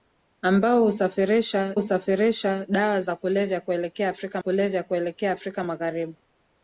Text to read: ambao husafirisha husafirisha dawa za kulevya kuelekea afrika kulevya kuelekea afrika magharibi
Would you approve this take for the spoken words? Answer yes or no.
yes